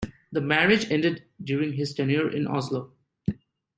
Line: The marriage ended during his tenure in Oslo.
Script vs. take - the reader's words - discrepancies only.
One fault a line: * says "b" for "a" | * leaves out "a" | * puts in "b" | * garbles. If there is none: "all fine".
all fine